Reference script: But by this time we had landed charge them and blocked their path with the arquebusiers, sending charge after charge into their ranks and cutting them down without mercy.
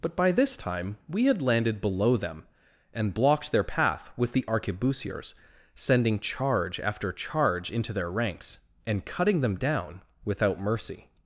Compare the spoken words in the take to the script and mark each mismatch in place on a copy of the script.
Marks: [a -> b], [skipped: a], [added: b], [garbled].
But by this time we had landed [charge -> below] them and blocked their path with the arquebusiers, sending charge after charge into their ranks and cutting them down without mercy.